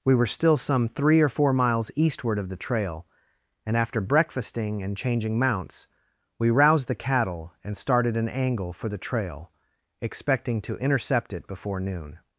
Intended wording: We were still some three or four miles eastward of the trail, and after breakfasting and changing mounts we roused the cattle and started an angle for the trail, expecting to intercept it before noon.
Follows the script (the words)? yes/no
yes